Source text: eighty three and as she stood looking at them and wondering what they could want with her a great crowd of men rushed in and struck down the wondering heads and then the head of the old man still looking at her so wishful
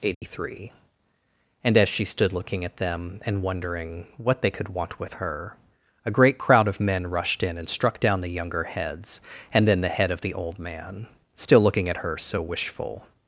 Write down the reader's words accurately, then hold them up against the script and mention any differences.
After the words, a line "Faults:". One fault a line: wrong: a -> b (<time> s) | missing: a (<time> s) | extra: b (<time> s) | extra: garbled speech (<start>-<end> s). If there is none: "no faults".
eighty three and as she stood looking at them and wondering what they could want with her a great crowd of men rushed in and struck down the younger heads and then the head of the old man still looking at her so wishful
Faults:
wrong: wondering -> younger (8.3 s)